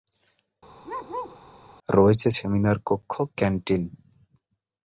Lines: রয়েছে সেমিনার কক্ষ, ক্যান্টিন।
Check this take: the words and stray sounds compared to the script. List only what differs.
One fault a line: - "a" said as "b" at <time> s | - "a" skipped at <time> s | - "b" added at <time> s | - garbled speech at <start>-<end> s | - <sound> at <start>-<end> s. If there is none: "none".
- bark at 0.8-1.4 s